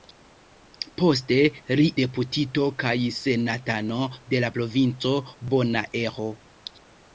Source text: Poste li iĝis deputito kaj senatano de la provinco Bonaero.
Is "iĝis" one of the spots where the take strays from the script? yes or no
yes